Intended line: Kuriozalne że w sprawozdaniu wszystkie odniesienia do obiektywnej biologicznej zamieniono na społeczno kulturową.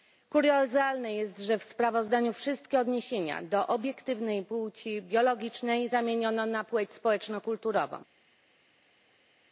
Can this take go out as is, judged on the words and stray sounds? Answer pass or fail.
fail